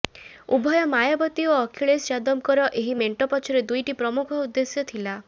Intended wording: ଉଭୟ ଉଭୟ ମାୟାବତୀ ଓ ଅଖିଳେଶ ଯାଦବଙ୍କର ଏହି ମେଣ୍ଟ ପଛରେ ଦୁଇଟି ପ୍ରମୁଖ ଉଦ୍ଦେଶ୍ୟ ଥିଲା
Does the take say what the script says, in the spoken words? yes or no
no